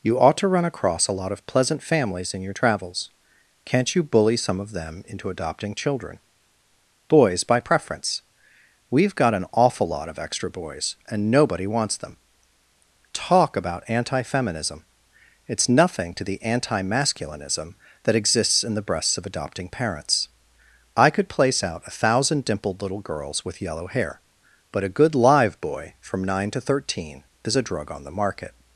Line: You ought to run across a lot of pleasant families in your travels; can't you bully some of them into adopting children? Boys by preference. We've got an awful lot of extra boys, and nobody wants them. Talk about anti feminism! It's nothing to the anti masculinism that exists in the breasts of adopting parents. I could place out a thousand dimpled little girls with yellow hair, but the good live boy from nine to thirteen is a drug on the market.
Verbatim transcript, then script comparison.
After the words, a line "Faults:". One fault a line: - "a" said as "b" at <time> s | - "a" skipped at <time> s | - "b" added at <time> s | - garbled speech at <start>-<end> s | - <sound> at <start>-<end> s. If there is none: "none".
You ought to run across a lot of pleasant families in your travels; can't you bully some of them into adopting children? Boys by preference. We've got an awful lot of extra boys, and nobody wants them. Talk about anti feminism! It's nothing to the anti masculinism that exists in the breasts of adopting parents. I could place out a thousand dimpled little girls with yellow hair, but a good live boy from nine to thirteen is a drug on the market.
Faults:
- "the" said as "a" at 24.8 s